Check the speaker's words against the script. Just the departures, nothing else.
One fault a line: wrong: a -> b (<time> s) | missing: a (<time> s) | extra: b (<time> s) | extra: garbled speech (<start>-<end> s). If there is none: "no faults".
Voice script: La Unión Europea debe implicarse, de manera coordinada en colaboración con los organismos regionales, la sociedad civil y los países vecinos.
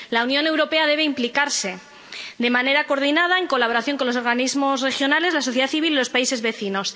no faults